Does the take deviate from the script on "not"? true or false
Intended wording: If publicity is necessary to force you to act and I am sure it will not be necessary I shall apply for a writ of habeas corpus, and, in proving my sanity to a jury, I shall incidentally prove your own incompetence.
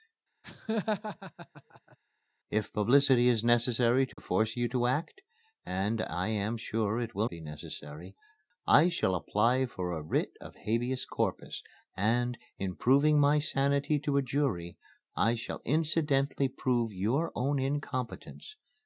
true